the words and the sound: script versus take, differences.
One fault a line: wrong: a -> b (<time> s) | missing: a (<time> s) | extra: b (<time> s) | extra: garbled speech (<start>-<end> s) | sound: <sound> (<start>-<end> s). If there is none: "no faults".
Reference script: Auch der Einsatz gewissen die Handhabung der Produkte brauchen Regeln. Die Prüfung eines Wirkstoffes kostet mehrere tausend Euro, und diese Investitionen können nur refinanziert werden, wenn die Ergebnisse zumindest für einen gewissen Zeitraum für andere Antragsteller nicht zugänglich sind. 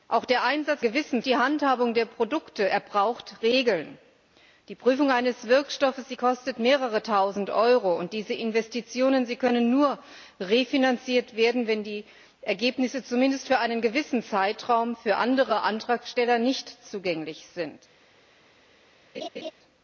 sound: laugh (19.1-19.5 s)